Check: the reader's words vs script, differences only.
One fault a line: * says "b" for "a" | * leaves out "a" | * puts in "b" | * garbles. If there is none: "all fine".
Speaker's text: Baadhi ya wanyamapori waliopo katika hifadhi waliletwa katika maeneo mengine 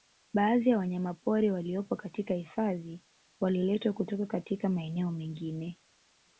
* puts in "kutoka"